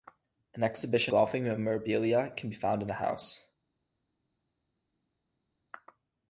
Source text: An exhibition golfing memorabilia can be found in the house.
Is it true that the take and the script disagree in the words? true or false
false